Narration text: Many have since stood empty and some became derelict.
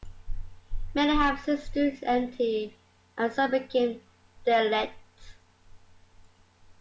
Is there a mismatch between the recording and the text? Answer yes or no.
no